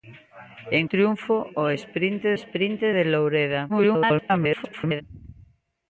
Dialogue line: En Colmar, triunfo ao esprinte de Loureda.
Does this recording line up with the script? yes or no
no